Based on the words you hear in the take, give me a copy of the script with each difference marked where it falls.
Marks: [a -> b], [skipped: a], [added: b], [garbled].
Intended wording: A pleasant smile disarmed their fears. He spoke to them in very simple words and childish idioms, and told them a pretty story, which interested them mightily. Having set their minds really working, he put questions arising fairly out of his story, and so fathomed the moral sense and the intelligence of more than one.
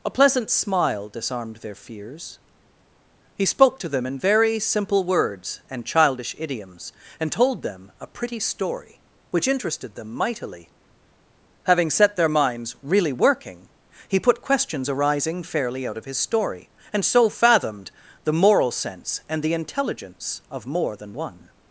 A pleasant smile disarmed their fears. He spoke to them in very simple words and childish idioms, and told them a pretty story, which interested them mightily. Having set their minds really working, he put questions arising fairly out of his story, and so fathomed the moral sense and the intelligence of more than one.